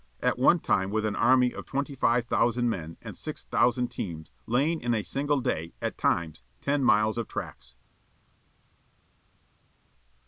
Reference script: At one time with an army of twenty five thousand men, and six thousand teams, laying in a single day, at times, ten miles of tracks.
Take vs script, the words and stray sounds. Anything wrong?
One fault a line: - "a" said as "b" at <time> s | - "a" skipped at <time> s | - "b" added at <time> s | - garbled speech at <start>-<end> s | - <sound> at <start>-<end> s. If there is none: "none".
none